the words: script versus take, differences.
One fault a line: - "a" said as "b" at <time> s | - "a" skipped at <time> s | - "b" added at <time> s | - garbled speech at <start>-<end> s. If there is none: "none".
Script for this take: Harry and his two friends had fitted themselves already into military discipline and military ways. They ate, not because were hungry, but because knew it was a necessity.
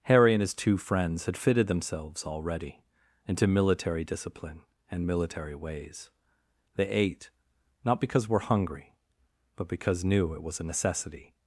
none